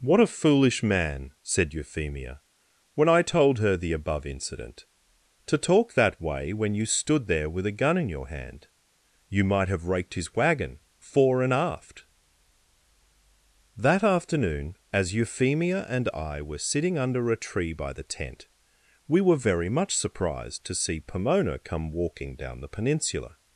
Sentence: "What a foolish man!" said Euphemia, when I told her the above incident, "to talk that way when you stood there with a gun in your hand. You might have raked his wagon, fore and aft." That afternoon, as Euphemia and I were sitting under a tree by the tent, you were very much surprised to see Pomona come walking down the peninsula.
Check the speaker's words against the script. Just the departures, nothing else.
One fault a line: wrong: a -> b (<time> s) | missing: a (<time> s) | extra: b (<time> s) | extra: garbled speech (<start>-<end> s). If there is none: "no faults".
wrong: you -> we (19.1 s)